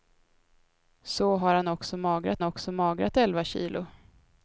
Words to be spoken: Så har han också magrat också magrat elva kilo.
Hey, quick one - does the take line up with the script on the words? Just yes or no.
yes